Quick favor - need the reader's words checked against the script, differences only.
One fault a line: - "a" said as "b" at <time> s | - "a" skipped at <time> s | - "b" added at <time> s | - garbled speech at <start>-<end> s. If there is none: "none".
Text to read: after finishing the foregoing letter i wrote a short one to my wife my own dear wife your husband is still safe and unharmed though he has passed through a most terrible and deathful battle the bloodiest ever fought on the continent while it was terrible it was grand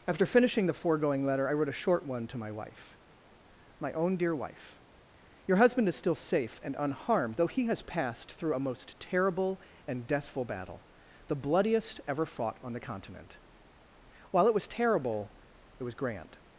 none